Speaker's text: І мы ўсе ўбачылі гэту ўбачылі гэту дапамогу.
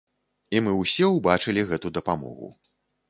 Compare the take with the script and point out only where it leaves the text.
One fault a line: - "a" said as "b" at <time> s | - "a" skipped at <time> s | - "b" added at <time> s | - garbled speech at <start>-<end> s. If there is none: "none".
- "ўбачылі гэту" skipped at 1.9 s